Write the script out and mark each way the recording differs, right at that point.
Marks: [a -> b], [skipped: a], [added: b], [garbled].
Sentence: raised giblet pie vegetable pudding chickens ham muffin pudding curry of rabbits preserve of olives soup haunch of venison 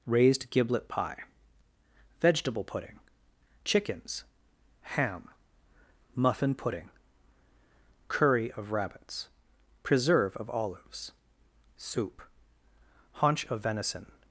raised giblet pie vegetable pudding chickens ham muffin pudding curry of rabbits preserve of olives soup haunch of venison